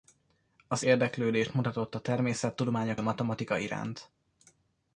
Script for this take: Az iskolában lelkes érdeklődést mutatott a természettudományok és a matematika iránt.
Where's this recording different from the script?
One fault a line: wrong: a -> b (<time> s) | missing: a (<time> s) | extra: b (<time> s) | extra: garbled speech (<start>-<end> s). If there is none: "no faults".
missing: iskolában lelkes (0.8 s)
missing: és (3.0 s)